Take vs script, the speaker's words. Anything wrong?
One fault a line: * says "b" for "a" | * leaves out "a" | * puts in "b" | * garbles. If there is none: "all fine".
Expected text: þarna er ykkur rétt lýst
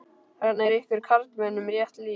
* puts in "karlmönnum"